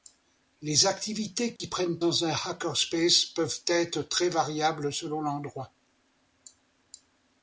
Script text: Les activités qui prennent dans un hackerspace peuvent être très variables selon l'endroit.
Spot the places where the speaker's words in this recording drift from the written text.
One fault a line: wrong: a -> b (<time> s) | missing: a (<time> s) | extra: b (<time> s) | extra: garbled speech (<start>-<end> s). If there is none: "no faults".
no faults